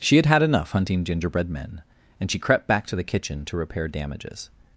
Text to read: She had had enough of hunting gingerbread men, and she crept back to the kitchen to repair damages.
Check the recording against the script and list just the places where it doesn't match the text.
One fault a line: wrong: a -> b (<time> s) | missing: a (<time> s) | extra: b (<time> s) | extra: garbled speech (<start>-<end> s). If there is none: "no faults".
missing: of (0.7 s)